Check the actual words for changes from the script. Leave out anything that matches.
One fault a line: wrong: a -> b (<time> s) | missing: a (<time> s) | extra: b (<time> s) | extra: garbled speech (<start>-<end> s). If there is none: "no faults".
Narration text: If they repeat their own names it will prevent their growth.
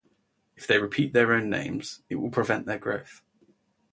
no faults